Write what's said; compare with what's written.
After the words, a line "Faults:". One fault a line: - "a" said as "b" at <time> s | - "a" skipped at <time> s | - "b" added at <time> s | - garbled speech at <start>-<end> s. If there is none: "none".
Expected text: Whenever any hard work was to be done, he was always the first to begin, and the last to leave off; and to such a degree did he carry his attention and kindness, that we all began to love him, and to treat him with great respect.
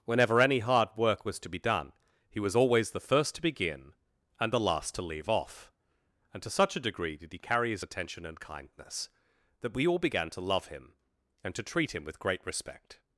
Whenever any hard work was to be done, he was always the first to begin, and the last to leave off; and to such a degree did he carry his attention and kindness, that we all began to love him, and to treat him with great respect.
Faults:
none